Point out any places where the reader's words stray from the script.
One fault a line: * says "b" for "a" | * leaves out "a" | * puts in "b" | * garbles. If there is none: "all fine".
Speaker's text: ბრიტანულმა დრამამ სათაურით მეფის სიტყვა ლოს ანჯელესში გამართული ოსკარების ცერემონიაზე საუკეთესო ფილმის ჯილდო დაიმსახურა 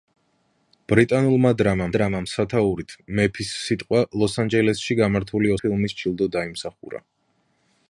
* puts in "დრამამ"
* leaves out "ოსკარების ცერემონიაზე საუკეთესო"